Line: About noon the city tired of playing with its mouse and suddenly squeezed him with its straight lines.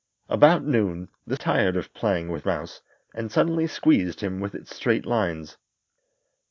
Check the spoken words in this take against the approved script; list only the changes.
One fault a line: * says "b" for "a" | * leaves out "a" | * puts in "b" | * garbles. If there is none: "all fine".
* leaves out "city"
* leaves out "its"